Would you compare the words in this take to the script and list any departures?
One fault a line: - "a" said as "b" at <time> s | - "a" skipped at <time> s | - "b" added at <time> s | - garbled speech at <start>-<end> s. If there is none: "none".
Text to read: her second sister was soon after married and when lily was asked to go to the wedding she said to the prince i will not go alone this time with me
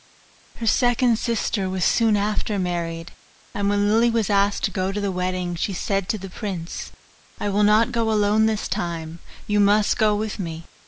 - "you must go" added at 9.4 s